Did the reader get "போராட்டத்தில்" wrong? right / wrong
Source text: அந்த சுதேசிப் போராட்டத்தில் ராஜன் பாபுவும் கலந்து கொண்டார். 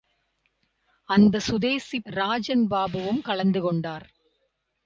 wrong